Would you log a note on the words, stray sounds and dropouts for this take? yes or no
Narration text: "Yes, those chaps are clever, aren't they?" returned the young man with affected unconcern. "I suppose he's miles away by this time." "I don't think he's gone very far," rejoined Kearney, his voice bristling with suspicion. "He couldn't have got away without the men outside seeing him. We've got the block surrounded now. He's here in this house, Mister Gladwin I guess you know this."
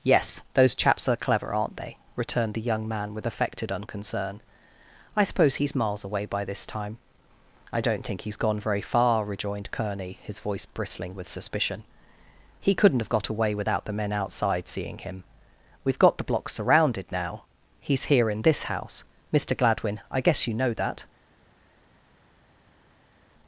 yes